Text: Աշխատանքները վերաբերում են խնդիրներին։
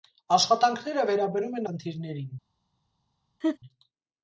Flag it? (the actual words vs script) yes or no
no